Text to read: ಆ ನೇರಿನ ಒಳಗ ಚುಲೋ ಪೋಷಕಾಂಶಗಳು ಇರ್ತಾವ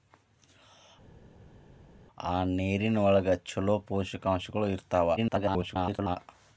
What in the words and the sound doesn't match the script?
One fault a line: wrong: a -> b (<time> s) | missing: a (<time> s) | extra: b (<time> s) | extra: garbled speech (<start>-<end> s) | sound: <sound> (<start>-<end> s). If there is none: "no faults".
extra: garbled speech (5.2-6.2 s)